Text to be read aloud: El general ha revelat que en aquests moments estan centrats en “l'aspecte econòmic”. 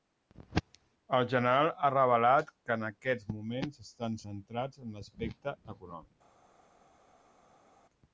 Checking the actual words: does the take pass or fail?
pass